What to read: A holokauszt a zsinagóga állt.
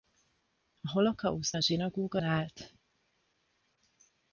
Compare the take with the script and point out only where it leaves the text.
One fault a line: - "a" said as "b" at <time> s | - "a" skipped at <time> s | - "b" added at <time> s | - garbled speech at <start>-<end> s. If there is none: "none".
none